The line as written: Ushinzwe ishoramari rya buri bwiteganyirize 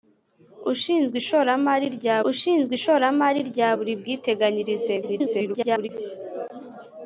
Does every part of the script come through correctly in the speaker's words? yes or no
no